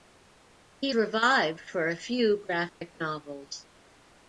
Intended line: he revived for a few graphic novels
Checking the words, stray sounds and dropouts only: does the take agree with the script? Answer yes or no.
no